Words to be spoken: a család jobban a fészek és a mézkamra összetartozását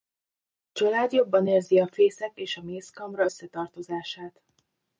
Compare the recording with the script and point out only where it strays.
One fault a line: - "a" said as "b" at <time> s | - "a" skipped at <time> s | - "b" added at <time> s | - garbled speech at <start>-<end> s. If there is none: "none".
- "érzi" added at 1.4 s